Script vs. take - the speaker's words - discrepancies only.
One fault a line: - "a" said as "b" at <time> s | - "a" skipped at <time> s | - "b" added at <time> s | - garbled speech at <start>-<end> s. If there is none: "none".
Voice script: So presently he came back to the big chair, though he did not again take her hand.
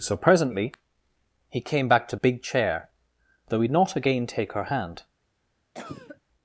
- "the" skipped at 2.1 s
- "did" skipped at 3.7 s